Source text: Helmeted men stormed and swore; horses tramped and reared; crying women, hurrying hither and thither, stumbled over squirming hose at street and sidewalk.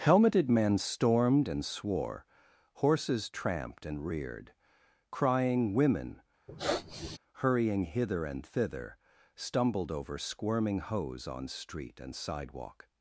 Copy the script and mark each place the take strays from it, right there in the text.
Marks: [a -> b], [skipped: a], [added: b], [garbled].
Helmeted men stormed and swore; horses tramped and reared; crying women, hurrying hither and thither, stumbled over squirming hose [at -> on] street and sidewalk.